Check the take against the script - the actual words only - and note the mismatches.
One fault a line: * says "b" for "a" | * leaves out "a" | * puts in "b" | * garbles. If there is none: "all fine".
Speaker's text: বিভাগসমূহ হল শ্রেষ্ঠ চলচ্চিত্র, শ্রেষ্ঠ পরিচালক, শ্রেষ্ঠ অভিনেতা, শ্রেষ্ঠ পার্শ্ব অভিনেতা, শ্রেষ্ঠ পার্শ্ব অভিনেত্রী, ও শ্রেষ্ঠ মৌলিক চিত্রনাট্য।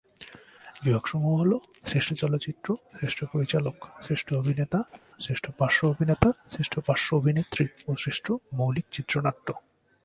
all fine